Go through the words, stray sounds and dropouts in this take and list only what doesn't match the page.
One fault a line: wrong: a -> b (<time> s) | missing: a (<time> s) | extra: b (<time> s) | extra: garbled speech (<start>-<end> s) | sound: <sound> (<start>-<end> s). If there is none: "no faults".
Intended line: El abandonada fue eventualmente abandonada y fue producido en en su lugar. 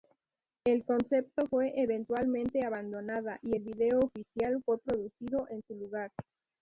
wrong: abandonada -> concepto (0.8 s)
extra: el vídeo oficial (3.5 s)
missing: en (5.6 s)